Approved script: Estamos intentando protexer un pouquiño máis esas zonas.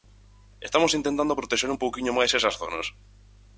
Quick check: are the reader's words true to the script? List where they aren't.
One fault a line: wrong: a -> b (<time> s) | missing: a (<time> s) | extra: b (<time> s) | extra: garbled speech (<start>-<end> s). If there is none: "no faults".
no faults